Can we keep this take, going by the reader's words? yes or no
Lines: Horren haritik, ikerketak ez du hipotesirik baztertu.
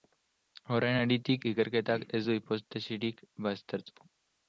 yes